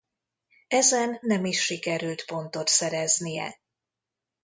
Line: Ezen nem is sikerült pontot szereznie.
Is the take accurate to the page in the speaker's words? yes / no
yes